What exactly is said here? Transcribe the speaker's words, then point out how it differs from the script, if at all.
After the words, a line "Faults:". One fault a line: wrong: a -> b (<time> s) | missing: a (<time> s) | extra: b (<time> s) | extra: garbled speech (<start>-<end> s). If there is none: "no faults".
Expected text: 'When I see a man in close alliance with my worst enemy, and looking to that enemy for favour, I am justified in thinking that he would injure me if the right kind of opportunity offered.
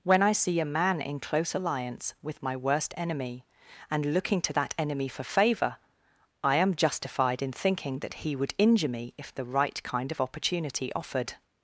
'When I see a man in close alliance with my worst enemy, and looking to that enemy for favour, I am justified in thinking that he would injure me if the right kind of opportunity offered.
Faults:
no faults